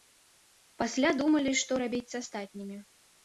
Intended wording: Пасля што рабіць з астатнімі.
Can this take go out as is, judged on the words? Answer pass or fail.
fail